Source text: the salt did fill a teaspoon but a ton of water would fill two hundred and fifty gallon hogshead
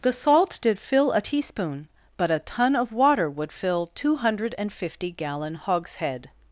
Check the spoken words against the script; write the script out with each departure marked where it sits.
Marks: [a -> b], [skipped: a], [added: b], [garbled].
the salt did fill a teaspoon but a ton of water would fill two hundred and fifty gallon hogshead